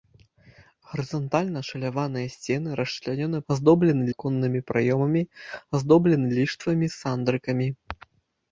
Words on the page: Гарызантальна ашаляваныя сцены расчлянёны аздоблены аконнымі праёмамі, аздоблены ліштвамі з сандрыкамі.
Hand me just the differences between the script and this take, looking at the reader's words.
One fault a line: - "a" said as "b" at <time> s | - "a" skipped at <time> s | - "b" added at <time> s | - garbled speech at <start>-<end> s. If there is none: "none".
none